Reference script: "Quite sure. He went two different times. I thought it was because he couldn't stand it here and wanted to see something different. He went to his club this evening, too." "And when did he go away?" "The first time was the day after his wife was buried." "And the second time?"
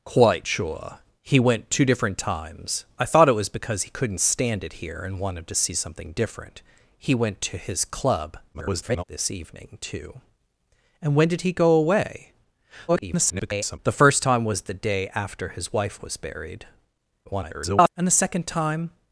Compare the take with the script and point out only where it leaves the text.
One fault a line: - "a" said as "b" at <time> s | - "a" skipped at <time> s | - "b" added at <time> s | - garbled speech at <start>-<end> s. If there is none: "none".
- garbled speech at 8.5-9.0 s
- garbled speech at 12.9-13.8 s
- garbled speech at 17.2-17.9 s